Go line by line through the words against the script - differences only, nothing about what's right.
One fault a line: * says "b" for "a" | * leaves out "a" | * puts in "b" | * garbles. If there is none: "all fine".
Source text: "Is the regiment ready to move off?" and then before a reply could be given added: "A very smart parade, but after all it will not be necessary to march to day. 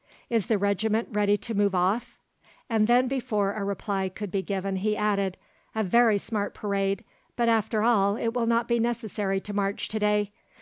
* puts in "he"